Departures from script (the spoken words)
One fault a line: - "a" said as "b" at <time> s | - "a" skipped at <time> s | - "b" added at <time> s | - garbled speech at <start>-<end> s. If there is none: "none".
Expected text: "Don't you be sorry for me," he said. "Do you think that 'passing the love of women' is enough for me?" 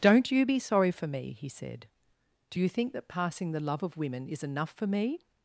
none